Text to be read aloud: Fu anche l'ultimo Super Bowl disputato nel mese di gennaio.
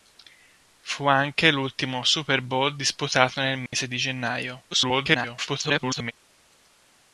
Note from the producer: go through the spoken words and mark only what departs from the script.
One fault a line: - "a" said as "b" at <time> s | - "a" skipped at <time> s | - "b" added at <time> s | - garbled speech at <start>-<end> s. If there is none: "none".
- garbled speech at 4.7-6.1 s